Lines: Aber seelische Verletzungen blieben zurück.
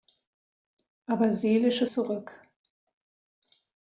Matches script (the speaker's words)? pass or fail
fail